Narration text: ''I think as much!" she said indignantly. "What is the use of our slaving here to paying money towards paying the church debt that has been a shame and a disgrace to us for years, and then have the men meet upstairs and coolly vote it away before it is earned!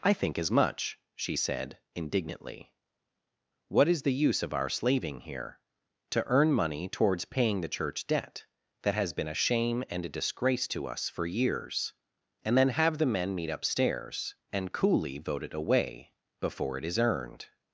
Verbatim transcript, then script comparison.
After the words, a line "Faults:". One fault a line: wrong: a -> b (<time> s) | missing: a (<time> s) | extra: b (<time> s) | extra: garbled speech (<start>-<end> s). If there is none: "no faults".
''I think as much!" she said indignantly. "What is the use of our slaving here to earn money towards paying the church debt that has been a shame and a disgrace to us for years, and then have the men meet upstairs and coolly vote it away before it is earned!
Faults:
wrong: paying -> earn (6.2 s)